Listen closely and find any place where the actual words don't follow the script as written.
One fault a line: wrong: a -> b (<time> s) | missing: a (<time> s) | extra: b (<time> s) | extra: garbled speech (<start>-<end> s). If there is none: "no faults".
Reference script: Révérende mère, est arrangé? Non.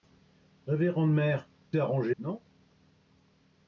no faults